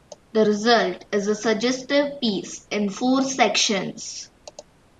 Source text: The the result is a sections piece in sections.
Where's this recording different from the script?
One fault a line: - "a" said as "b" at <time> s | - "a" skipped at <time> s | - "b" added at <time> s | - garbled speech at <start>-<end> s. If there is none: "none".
- "the" skipped at 0.5 s
- "sections" said as "suggestive" at 1.3 s
- "four" added at 2.9 s